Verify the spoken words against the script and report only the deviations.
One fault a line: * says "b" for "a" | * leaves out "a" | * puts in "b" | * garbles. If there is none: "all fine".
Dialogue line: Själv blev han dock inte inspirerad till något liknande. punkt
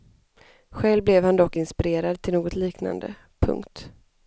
* leaves out "inte"